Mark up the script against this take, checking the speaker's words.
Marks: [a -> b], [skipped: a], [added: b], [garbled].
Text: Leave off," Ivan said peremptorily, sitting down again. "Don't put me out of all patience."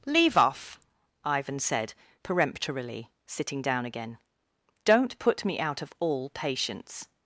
Leave off," Ivan said peremptorily, sitting down again. "Don't put me out of all patience."